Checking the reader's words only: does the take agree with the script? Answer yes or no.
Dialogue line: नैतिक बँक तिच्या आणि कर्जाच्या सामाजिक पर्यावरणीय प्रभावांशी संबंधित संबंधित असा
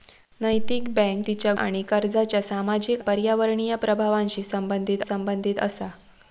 yes